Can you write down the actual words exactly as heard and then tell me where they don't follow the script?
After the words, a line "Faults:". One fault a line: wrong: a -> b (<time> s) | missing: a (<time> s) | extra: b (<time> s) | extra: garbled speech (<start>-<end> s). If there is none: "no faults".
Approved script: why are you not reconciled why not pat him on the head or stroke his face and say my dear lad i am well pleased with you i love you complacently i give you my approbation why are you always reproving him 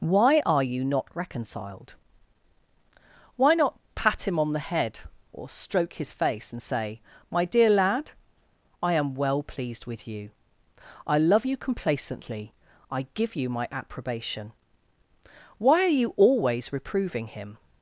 why are you not reconciled why not pat him on the head or stroke his face and say my dear lad i am well pleased with you i love you complacently i give you my approbation why are you always reproving him
Faults:
no faults